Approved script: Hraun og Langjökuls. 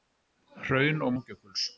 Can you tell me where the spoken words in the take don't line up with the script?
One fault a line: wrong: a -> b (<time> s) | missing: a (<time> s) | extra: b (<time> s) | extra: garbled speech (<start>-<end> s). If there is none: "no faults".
no faults